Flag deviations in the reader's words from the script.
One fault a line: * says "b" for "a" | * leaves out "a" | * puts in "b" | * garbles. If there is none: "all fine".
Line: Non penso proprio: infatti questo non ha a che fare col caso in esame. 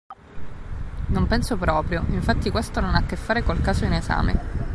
all fine